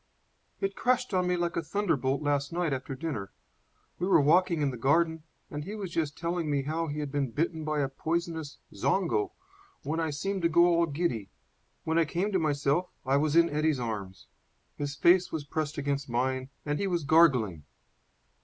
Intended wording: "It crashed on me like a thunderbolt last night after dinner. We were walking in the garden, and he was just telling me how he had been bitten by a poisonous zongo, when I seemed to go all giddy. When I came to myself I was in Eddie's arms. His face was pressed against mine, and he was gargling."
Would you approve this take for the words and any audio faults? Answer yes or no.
yes